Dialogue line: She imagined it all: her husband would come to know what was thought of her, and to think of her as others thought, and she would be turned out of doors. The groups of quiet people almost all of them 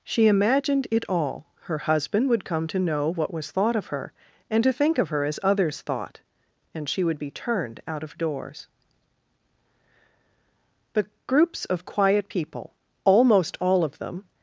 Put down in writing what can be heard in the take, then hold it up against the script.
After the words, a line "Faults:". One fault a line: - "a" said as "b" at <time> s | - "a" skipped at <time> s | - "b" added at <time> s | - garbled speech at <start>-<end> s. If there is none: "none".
She imagined it all: her husband would come to know what was thought of her, and to think of her as others thought, and she would be turned out of doors. The groups of quiet people almost all of them
Faults:
none